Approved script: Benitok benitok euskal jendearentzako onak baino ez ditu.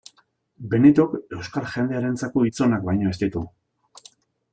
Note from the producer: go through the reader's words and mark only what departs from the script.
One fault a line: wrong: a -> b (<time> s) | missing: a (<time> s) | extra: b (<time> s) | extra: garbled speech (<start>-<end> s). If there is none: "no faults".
missing: benitok (1.1 s)
extra: hitz (2.5 s)